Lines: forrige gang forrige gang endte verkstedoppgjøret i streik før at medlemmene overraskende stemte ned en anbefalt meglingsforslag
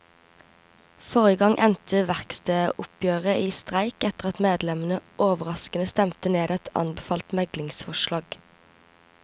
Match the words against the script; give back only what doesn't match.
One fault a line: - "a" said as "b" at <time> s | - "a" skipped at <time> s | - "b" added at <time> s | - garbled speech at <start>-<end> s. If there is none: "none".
- "forrige gang" skipped at 1.6 s
- "før" said as "etter" at 4.1 s
- "en" said as "et" at 6.6 s